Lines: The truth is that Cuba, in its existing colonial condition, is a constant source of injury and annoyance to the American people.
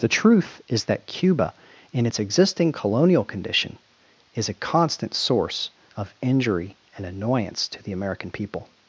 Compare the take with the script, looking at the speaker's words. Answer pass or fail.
pass